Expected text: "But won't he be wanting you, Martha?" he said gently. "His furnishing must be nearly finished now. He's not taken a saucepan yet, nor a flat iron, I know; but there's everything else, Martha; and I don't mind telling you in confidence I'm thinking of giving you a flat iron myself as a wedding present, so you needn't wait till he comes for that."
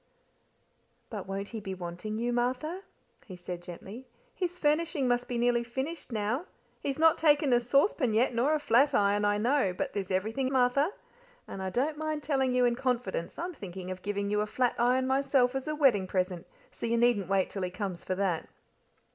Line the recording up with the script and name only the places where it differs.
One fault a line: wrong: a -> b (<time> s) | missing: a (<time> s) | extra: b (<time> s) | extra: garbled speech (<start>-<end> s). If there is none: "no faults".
missing: else (10.5 s)